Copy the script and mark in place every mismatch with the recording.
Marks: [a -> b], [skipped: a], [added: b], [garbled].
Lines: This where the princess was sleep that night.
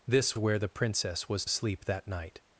This where the princess was sleep that night.